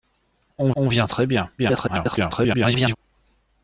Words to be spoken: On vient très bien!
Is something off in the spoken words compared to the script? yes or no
yes